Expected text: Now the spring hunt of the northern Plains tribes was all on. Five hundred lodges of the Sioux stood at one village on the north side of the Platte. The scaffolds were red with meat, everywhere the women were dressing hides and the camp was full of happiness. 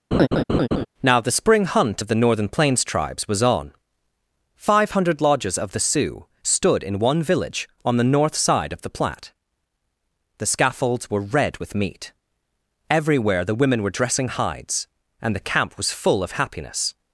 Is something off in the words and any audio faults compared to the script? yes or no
yes